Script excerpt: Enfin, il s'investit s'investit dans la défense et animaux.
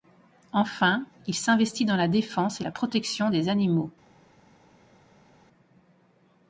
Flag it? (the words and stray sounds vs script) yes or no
yes